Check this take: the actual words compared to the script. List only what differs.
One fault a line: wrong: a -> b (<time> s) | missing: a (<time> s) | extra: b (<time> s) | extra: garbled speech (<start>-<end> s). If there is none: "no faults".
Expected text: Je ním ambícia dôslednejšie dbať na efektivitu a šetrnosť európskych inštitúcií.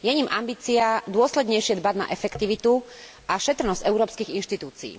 no faults